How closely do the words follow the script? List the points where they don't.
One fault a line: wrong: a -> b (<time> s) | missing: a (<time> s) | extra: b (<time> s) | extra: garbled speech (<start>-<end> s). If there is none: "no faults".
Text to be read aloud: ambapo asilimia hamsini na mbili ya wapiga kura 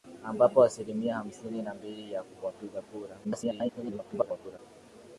extra: garbled speech (3.2-4.6 s)